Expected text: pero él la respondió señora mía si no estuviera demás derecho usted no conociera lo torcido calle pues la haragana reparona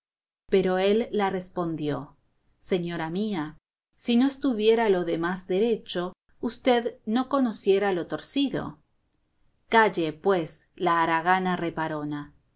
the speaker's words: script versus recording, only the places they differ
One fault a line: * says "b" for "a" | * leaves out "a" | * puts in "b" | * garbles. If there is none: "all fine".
* puts in "lo"